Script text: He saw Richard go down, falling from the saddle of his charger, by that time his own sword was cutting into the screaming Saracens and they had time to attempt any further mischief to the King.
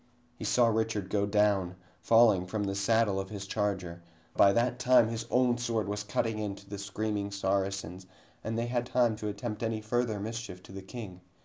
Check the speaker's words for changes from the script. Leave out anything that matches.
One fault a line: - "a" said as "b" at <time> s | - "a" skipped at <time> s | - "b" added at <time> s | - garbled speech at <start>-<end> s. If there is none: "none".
none